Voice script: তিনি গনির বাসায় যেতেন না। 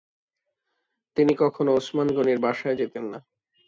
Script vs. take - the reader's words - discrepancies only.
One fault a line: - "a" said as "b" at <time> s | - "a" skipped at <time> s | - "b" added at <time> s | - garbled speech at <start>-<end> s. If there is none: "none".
- "কখনো ওসমান" added at 1.4 s